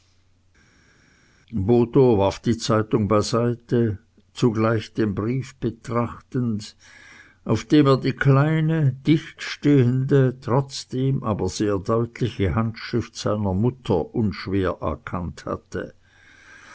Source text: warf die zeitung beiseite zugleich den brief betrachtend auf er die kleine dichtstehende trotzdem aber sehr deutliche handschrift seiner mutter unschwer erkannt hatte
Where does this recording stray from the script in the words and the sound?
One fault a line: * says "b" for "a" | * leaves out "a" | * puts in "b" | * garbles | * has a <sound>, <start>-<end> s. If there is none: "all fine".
* puts in "dem"